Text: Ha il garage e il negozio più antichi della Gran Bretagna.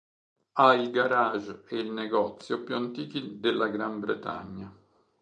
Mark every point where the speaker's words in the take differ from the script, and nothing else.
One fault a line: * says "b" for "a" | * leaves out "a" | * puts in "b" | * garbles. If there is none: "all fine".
all fine